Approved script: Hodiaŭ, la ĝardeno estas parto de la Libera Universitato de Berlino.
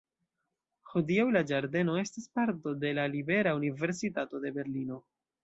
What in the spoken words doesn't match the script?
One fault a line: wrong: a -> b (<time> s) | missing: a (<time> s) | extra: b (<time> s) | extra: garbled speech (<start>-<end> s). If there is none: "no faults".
no faults